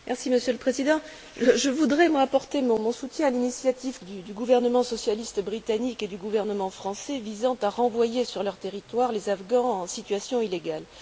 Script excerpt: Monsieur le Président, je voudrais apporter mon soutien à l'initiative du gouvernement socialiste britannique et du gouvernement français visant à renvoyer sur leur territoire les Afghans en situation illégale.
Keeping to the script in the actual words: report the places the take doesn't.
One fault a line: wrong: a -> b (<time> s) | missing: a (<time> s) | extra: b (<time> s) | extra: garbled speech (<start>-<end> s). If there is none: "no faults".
no faults